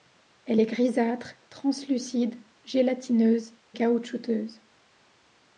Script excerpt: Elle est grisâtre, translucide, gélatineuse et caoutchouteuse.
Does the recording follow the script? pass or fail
fail